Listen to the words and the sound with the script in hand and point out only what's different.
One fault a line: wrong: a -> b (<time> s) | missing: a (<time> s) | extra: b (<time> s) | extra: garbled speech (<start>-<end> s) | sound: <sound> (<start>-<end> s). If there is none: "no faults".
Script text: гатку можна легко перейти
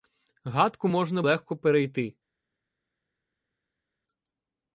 no faults